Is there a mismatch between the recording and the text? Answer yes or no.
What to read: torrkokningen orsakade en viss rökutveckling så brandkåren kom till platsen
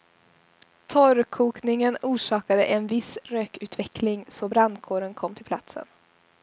no